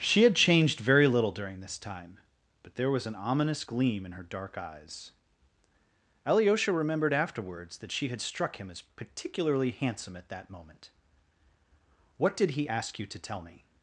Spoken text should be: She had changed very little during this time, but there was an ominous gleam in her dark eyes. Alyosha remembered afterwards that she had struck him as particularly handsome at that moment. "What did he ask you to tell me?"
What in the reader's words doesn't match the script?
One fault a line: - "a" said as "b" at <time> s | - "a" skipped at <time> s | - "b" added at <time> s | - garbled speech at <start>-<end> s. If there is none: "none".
none